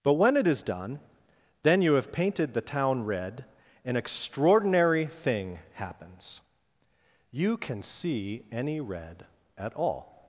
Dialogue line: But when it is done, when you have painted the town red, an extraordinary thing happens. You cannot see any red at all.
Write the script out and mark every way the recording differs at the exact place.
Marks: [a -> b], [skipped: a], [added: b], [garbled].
But when it is done, [when -> then] you have painted the town red, an extraordinary thing happens. You [cannot -> can] see any red at all.